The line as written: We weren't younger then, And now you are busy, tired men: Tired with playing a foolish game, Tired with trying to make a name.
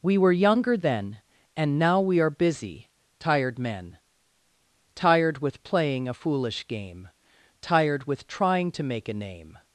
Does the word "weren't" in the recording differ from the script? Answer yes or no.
yes